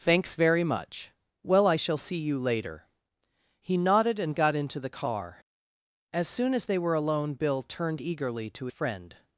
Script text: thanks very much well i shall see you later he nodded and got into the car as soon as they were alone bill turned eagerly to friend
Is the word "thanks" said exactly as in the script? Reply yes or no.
yes